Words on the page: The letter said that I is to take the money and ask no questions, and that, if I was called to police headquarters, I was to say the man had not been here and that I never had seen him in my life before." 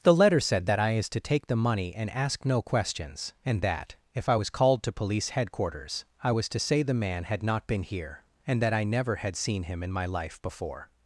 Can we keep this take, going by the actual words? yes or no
yes